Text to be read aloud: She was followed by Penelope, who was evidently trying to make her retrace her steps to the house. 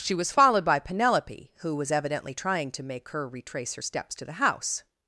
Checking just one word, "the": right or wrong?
right